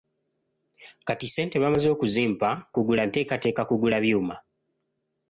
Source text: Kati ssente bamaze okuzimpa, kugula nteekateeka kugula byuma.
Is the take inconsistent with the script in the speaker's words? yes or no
no